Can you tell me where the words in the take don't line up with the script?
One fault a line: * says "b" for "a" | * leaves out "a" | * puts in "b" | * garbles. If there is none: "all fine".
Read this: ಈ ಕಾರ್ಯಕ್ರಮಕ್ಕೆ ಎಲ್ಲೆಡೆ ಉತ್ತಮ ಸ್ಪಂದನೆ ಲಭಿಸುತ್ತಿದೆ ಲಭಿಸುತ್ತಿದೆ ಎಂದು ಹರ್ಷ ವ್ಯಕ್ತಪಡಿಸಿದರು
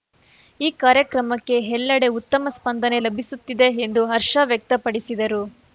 * leaves out "ಲಭಿಸುತ್ತಿದೆ"